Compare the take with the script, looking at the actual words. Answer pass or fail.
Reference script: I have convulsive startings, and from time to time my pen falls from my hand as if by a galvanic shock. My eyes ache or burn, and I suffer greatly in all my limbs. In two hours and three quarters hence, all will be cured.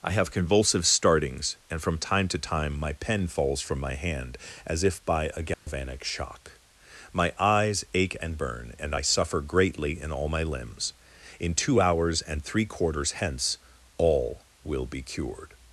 fail